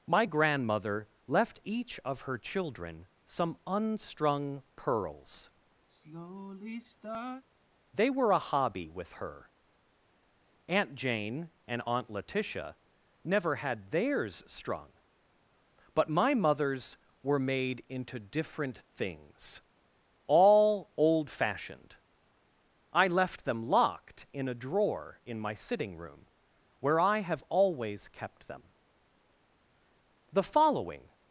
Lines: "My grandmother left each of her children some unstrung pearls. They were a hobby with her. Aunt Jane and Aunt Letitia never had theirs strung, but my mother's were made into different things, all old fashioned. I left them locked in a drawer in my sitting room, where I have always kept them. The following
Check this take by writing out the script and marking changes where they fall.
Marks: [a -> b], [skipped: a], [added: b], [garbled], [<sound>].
"My grandmother left each of her children some unstrung pearls. [sigh] They were a hobby with her. Aunt Jane and Aunt Letitia never had theirs strung, but my mother's were made into different things, all old fashioned. I left them locked in a drawer in my sitting room, where I have always kept them. The following